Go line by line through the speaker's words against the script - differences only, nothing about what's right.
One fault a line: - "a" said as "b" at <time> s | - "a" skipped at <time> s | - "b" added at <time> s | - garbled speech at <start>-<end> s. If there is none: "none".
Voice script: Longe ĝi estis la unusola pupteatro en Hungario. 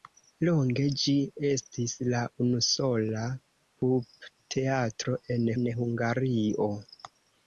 - "en" added at 5.6 s